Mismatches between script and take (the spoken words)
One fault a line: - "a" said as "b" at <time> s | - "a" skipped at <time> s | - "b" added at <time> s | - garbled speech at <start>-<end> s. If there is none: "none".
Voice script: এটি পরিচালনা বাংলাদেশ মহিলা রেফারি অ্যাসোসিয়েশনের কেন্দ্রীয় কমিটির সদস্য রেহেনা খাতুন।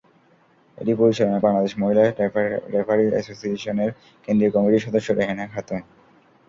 none